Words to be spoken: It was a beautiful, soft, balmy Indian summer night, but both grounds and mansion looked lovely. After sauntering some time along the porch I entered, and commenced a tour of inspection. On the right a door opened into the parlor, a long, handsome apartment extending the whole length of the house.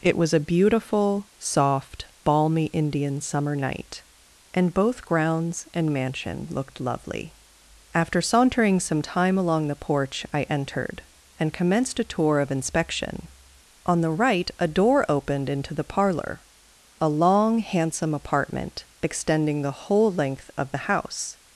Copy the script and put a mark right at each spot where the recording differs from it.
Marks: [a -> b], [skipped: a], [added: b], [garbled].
It was a beautiful, soft, balmy Indian summer night, [but -> and] both grounds and mansion looked lovely. After sauntering some time along the porch I entered, and commenced a tour of inspection. On the right a door opened into the parlor, a long, handsome apartment extending the whole length of the house.